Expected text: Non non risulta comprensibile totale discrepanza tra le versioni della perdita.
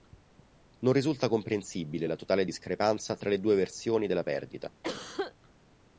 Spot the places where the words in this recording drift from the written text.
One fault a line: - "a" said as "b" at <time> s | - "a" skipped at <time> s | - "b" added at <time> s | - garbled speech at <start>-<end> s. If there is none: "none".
- "non" skipped at 0.9 s
- "la" added at 2.1 s
- "due" added at 3.4 s